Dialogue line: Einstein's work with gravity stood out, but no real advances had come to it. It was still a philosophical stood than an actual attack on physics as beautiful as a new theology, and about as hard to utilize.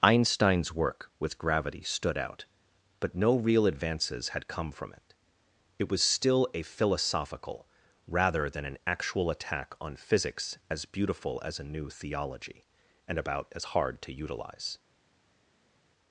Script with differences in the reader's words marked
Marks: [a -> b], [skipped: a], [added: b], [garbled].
Einstein's work with gravity stood out, but no real advances had come [to -> from] it. It was still a philosophical [stood -> rather] than an actual attack on physics as beautiful as a new theology, and about as hard to utilize.